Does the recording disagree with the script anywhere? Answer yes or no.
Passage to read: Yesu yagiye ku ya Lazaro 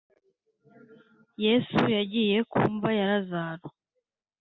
yes